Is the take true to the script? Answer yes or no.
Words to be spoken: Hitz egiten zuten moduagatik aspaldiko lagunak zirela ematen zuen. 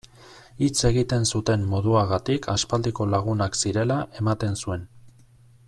yes